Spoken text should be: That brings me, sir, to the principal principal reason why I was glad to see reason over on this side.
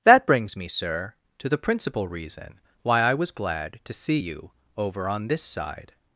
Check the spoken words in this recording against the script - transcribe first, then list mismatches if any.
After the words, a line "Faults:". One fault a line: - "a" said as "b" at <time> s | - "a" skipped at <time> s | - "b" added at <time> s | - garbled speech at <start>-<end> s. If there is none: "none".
That brings me, sir, to the principal reason why I was glad to see you over on this side.
Faults:
- "principal" skipped at 2.1 s
- "reason" said as "you" at 4.1 s